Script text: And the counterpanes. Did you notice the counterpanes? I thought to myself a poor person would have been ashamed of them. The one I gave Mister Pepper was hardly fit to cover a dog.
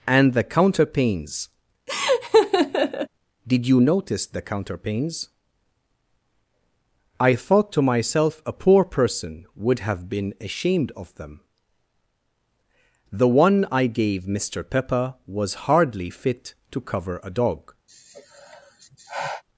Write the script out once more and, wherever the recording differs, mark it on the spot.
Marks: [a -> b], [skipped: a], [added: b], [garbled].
And the counterpanes. Did you notice the counterpanes? I thought to myself a poor person would have been ashamed of them. The one I gave Mister Pepper was hardly fit to cover a dog.